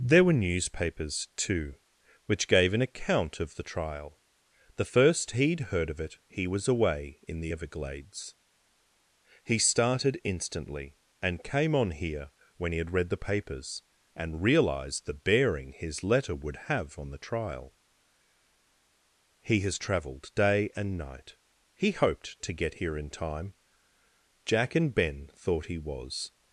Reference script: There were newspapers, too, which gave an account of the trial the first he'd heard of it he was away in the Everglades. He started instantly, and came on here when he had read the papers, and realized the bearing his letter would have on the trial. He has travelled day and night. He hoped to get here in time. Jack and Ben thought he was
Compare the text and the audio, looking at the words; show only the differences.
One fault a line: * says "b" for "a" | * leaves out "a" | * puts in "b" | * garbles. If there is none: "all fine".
all fine